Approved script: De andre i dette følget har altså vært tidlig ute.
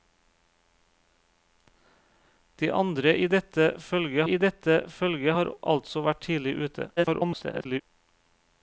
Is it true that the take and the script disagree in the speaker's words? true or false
true